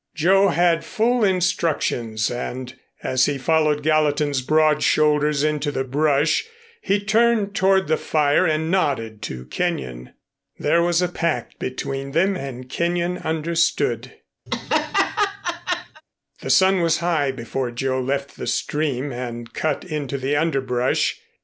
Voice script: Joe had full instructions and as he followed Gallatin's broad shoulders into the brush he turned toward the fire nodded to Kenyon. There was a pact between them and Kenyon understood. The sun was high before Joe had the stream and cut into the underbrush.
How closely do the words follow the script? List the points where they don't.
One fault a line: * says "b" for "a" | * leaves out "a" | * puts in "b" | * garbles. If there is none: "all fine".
* puts in "and"
* says "left" for "had"